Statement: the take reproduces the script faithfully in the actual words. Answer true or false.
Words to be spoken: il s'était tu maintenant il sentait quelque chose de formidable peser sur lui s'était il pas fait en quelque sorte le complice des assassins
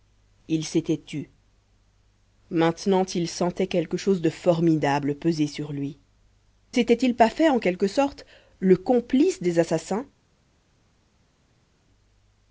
true